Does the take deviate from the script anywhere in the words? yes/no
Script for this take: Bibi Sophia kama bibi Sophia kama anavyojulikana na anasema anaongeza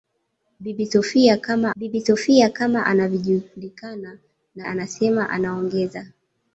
no